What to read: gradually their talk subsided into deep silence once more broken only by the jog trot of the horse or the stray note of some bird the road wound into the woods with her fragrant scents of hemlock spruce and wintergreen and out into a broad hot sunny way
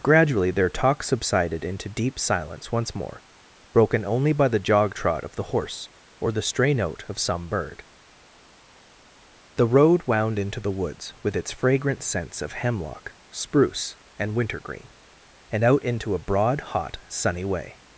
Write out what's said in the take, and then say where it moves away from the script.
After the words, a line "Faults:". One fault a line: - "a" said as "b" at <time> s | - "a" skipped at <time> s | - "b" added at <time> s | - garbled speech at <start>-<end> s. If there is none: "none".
gradually their talk subsided into deep silence once more broken only by the jog trot of the horse or the stray note of some bird the road wound into the woods with its fragrant scents of hemlock spruce and wintergreen and out into a broad hot sunny way
Faults:
- "her" said as "its" at 11.3 s